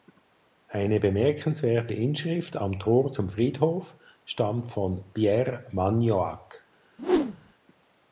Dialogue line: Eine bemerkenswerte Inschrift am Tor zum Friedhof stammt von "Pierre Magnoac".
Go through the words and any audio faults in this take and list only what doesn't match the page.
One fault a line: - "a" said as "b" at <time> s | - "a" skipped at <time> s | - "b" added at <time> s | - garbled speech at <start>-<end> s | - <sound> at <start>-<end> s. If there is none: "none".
- whoosh at 7.0-7.5 s